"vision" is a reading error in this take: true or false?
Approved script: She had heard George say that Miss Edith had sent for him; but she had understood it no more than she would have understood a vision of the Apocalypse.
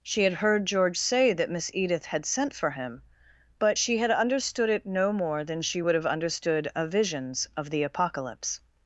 true